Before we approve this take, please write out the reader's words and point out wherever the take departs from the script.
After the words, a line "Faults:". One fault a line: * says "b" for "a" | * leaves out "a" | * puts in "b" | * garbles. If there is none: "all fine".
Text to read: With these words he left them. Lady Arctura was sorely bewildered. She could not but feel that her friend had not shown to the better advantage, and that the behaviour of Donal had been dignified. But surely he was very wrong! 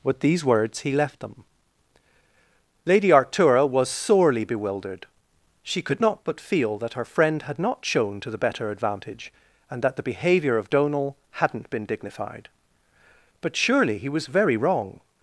With these words he left them. Lady Arctura was sorely bewildered. She could not but feel that her friend had not shown to the better advantage, and that the behaviour of Donal hadn't been dignified. But surely he was very wrong!
Faults:
* says "hadn't" for "had"